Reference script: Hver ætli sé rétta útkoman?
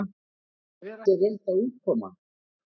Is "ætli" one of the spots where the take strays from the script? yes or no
yes